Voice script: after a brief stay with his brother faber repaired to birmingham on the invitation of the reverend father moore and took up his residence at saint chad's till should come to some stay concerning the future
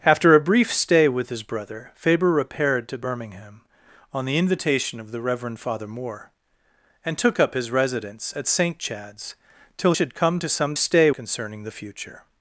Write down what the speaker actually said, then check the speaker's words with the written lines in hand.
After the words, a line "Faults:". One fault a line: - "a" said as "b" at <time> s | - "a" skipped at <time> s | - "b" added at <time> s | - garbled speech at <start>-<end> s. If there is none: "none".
after a brief stay with his brother faber repaired to birmingham on the invitation of the reverend father moore and took up his residence at saint chad's till should come to some stay concerning the future
Faults:
none